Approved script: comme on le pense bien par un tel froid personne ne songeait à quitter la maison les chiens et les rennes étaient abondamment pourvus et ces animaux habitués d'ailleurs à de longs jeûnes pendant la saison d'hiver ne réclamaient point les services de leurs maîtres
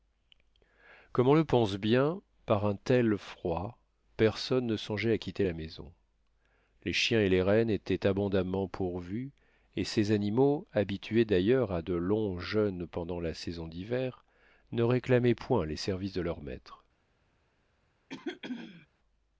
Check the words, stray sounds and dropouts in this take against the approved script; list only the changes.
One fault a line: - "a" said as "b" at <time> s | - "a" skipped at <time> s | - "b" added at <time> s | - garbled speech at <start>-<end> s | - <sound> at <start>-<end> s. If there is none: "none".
- throat clearing at 18.1-18.9 s